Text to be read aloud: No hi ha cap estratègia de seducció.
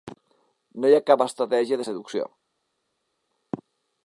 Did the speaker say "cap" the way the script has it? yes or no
yes